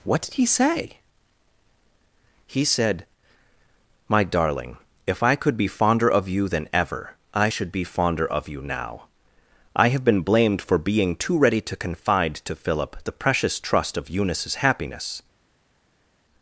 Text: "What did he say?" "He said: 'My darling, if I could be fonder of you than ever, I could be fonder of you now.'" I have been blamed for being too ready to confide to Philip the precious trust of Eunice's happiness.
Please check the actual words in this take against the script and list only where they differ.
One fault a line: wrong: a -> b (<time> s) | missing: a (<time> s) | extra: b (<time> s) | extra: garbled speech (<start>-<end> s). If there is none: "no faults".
wrong: could -> should (7.5 s)